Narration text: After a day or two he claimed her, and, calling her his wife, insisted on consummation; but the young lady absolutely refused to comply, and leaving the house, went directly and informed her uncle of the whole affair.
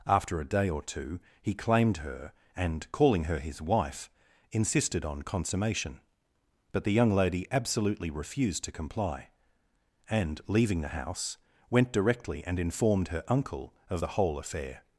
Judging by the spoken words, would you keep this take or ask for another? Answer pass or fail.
pass